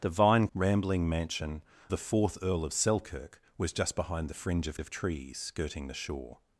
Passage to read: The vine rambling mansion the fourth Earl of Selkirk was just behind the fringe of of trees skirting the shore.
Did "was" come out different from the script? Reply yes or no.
no